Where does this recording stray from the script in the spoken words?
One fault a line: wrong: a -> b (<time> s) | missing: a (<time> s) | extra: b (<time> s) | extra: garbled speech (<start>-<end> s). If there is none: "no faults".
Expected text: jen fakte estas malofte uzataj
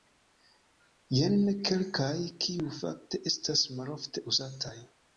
extra: kelkaj kiuj (1.7 s)